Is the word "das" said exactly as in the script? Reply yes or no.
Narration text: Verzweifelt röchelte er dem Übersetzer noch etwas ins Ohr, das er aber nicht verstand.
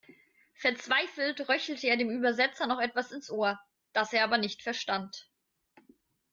yes